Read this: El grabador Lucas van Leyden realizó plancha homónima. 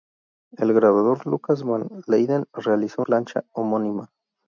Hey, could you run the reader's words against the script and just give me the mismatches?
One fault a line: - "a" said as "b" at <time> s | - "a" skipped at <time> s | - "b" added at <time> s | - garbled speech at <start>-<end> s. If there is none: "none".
none